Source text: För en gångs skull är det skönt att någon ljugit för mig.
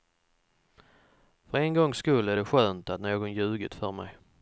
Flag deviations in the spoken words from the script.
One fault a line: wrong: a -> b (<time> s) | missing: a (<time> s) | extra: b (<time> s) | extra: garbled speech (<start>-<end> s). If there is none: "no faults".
no faults